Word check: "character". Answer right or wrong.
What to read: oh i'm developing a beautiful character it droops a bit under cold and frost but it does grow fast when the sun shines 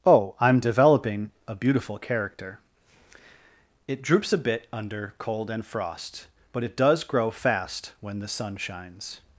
right